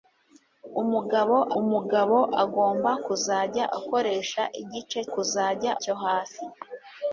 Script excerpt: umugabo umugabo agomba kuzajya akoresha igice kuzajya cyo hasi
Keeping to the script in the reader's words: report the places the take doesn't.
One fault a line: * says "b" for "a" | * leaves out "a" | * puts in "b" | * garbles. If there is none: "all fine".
all fine